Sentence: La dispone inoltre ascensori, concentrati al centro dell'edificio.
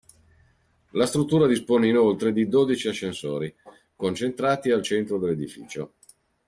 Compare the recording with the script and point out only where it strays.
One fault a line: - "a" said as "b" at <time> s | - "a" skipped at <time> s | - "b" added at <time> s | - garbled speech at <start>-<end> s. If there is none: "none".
- "struttura" added at 1.1 s
- "di dodici" added at 2.3 s